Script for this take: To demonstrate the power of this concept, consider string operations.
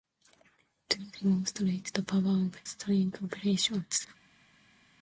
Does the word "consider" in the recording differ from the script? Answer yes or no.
yes